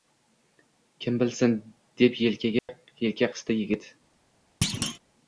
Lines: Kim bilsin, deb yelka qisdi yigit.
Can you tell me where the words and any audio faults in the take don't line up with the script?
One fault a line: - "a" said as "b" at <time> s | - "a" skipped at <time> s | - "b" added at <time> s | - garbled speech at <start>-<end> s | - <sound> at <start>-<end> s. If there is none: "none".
- dropout at 2.6-2.7 s
- thud at 4.6-5.0 s